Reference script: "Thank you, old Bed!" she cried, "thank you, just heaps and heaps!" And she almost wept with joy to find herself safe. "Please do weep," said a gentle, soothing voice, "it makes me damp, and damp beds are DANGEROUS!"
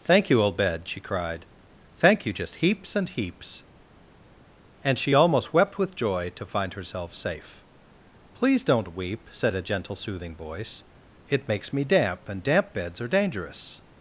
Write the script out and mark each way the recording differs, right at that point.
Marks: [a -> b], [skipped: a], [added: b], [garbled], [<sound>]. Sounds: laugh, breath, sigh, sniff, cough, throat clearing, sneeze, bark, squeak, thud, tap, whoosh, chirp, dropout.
"Thank you, old Bed!" she cried, "thank you, just heaps and heaps!" And she almost wept with joy to find herself safe. "Please [do -> don't] weep," said a gentle, soothing voice, "it makes me damp, and damp beds are DANGEROUS!"